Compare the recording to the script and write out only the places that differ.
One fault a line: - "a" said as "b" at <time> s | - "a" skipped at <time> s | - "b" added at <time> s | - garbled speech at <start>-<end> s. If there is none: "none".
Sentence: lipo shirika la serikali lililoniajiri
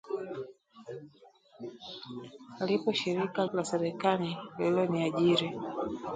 none